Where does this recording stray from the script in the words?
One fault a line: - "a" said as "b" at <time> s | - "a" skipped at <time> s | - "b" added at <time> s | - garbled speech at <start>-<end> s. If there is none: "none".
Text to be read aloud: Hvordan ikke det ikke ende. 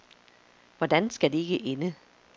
- "ikke" said as "skal" at 1.1 s